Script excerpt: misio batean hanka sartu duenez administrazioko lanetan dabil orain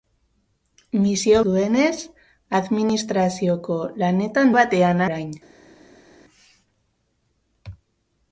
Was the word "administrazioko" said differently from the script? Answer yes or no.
no